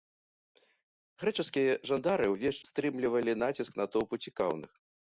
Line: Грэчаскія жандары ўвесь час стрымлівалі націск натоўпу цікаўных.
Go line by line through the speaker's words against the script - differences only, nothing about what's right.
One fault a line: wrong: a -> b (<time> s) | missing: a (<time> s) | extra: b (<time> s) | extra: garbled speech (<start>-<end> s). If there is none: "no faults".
missing: час (2.6 s)